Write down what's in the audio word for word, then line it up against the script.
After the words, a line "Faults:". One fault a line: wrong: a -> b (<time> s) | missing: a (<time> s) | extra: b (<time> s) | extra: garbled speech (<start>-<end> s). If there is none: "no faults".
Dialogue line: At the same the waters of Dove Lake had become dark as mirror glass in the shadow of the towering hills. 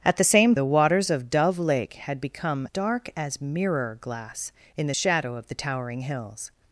At the same the waters of Dove Lake had become dark as mirror glass in the shadow of the towering hills.
Faults:
no faults